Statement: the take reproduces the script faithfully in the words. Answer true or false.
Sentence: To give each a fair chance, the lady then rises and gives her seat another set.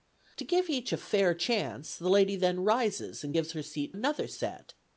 true